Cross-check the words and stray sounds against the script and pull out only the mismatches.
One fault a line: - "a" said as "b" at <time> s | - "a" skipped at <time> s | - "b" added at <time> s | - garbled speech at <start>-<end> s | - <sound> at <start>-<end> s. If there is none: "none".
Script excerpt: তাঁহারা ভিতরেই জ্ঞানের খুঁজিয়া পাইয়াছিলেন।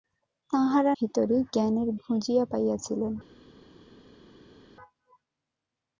none